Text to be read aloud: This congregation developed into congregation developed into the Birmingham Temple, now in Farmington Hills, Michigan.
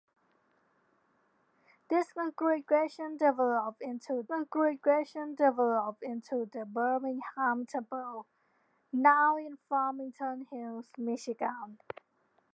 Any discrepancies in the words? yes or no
no